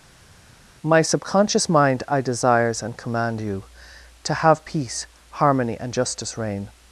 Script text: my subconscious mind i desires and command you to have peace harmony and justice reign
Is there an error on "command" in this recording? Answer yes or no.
no